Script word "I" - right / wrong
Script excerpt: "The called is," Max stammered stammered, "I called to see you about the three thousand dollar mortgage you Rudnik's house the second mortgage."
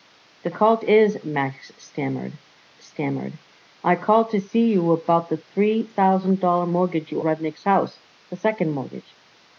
right